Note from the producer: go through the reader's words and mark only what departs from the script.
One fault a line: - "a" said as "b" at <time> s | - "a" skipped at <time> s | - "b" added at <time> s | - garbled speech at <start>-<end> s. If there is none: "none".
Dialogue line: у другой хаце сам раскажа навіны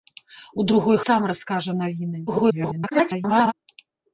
- "хаце" skipped at 1.0 s
- garbled speech at 2.3-3.5 s